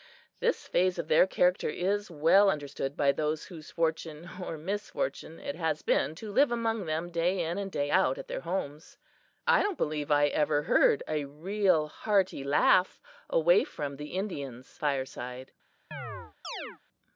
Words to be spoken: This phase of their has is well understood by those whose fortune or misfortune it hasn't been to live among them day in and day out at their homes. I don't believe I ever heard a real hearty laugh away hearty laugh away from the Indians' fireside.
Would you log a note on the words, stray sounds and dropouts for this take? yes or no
yes